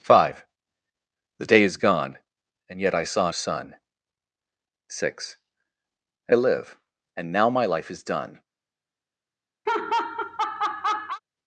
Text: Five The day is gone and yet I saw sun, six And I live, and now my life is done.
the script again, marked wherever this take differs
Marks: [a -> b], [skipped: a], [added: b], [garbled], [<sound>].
Five The day is gone and yet I saw sun, six And I live, and now my life is done. [laugh]